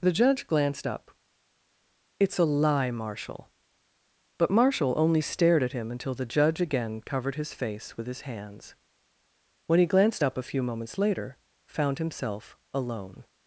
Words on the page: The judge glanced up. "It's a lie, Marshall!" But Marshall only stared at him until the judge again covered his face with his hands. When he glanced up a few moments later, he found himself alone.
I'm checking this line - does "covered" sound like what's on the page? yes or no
yes